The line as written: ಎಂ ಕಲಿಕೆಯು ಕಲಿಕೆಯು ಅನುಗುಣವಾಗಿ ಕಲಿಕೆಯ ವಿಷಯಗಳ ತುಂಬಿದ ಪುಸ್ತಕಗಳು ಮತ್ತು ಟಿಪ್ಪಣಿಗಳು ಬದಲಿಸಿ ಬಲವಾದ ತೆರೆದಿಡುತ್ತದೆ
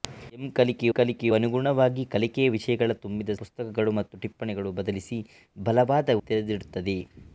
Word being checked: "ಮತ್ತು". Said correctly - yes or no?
yes